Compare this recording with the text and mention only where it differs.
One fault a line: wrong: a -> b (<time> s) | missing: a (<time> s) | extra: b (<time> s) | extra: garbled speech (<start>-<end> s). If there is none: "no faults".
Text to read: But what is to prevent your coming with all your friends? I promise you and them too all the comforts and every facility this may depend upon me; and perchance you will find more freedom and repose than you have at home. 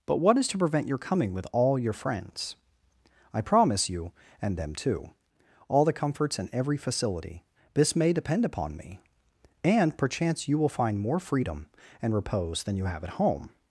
no faults